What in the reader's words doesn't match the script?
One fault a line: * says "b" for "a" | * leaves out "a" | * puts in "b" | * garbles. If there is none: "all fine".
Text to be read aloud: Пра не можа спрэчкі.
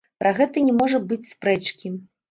* puts in "гэта"
* puts in "быць"